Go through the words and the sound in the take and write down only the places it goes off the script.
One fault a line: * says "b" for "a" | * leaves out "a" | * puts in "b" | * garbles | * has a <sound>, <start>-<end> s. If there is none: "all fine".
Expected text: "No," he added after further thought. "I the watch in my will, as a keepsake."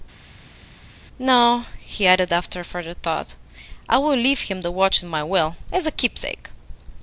* puts in "will leave him"